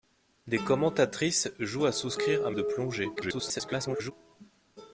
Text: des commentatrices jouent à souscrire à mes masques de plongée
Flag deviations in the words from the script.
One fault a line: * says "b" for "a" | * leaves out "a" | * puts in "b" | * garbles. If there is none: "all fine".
* leaves out "mes masques"
* garbles